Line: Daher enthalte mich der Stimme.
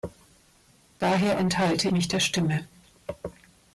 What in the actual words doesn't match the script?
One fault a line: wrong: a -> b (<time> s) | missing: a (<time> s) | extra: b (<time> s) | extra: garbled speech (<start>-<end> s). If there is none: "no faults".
no faults